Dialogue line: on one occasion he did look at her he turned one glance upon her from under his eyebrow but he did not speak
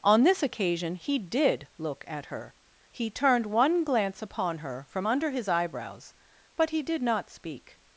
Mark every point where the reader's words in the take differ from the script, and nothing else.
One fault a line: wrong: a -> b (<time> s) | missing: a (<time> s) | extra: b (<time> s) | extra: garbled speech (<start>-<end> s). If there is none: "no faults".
wrong: one -> this (0.2 s)
wrong: eyebrow -> eyebrows (5.5 s)